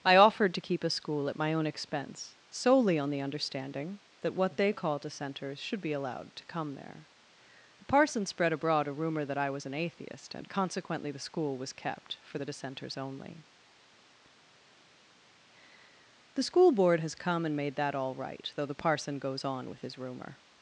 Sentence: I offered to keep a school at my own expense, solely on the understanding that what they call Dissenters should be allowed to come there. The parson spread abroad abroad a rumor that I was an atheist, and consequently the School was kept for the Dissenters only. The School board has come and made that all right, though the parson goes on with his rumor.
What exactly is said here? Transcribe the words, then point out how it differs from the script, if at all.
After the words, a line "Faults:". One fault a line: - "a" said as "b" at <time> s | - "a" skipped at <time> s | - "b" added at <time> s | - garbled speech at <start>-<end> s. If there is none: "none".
I offered to keep a school at my own expense, solely on the understanding that what they call Dissenters should be allowed to come there. The parson spread abroad a rumor that I was an atheist, and consequently the School was kept for the Dissenters only. The School board has come and made that all right, though the parson goes on with his rumor.
Faults:
- "abroad" skipped at 8.9 s